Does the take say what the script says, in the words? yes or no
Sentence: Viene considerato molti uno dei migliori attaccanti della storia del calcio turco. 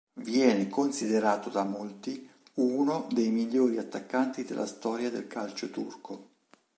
no